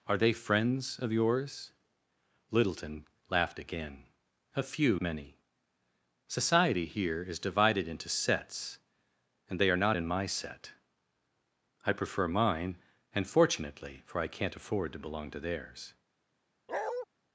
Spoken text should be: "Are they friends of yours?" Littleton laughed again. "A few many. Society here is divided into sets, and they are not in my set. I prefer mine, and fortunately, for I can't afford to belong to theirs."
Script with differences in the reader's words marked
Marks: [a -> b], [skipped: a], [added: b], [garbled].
"Are they friends of yours?" Littleton laughed again. "A few many. Society here is divided into sets, and they are not in my set. I prefer mine, and fortunately, for I can't afford to belong to theirs."